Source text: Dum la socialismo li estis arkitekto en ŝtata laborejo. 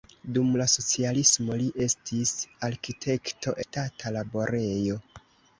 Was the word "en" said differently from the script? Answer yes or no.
yes